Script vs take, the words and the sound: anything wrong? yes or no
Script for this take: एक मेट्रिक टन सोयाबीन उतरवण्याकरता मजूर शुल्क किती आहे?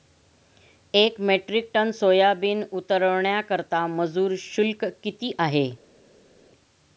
no